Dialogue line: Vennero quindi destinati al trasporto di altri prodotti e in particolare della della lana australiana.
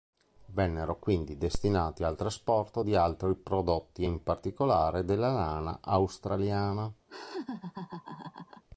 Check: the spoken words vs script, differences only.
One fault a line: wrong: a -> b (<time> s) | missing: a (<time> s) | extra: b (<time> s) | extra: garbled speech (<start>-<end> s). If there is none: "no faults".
missing: della (5.3 s)